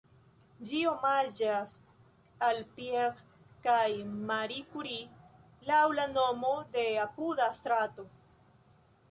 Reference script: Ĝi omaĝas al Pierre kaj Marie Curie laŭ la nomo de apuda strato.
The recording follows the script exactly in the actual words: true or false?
true